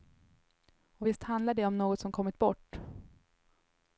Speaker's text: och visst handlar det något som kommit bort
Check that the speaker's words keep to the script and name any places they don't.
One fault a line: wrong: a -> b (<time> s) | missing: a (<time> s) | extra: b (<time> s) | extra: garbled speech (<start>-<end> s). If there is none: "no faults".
extra: om (1.7 s)